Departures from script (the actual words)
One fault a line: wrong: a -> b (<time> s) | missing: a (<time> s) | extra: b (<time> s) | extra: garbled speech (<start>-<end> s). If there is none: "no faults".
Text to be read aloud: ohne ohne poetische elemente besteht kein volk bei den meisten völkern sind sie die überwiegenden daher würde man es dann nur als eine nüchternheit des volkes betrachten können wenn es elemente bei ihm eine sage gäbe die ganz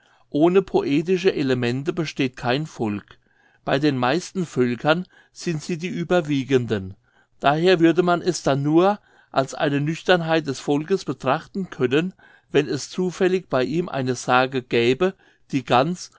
missing: ohne (0.6 s)
wrong: elemente -> zufällig (12.9 s)